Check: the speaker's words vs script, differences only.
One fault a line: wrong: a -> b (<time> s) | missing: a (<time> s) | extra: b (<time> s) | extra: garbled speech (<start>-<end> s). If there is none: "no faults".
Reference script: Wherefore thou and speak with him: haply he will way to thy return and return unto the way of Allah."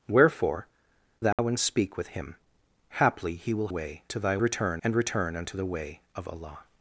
no faults